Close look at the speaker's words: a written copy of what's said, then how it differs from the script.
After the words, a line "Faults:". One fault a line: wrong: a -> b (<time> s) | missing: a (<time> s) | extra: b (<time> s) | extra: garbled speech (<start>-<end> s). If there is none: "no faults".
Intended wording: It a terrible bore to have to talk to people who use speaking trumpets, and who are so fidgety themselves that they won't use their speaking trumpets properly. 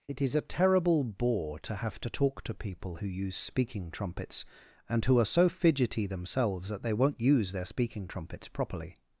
It is a terrible bore to have to talk to people who use speaking trumpets, and who are so fidgety themselves that they won't use their speaking trumpets properly.
Faults:
extra: is (0.2 s)